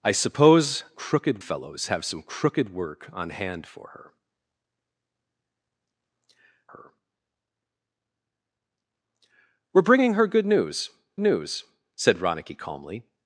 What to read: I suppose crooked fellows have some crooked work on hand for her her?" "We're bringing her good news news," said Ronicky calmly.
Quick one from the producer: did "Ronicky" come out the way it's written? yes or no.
yes